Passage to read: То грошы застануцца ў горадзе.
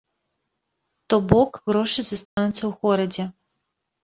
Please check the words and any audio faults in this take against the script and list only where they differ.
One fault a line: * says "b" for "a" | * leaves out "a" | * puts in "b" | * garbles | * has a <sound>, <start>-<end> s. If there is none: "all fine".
* puts in "бок"
* has a dropout, 2.3-2.4 s